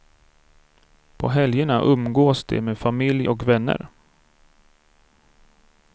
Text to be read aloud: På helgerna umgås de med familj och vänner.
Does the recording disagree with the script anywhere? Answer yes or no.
no